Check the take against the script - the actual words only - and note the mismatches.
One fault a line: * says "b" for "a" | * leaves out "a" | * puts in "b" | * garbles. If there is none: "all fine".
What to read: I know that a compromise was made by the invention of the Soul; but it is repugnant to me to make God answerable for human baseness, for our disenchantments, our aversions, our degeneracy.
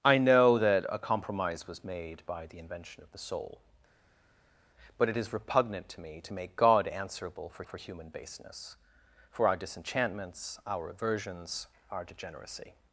* puts in "for"